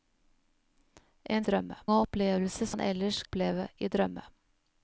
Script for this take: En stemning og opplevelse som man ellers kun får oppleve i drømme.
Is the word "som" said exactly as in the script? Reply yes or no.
no